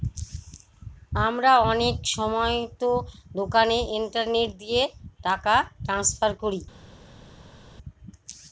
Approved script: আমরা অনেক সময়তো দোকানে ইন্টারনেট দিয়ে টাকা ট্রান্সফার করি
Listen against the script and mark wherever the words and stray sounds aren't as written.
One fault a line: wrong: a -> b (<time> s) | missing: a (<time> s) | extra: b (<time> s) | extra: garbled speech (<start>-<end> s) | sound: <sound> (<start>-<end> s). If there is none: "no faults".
no faults